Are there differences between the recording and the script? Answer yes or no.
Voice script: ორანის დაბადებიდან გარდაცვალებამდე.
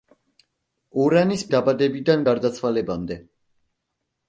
no